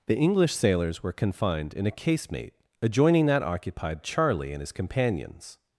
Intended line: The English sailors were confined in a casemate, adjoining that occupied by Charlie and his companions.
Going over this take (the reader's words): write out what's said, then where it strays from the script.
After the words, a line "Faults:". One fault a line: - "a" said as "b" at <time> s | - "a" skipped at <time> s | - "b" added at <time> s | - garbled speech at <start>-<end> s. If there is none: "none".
The English sailors were confined in a casemate, adjoining that occupied Charlie and his companions.
Faults:
- "by" skipped at 4.0 s